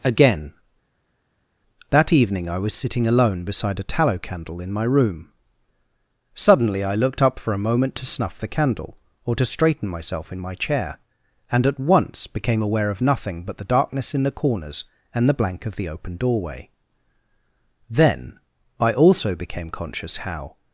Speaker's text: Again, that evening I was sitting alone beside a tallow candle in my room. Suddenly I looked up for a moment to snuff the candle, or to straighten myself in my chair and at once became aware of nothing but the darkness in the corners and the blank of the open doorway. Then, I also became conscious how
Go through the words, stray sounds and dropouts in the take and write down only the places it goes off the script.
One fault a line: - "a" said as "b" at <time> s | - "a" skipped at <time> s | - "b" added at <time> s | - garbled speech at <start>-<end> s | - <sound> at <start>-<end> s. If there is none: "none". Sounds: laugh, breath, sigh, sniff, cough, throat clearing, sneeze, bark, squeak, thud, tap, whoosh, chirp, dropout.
none